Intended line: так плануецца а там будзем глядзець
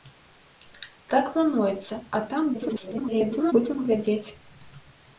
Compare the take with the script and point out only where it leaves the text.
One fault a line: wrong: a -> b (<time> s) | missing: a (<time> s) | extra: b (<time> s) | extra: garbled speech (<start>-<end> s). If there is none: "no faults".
extra: garbled speech (2.5-3.5 s)